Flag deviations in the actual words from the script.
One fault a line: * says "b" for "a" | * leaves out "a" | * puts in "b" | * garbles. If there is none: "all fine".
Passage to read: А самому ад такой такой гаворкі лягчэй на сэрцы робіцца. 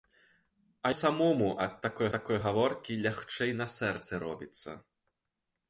all fine